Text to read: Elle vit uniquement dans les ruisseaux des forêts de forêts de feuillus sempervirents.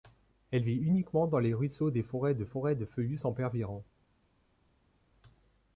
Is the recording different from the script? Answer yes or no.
no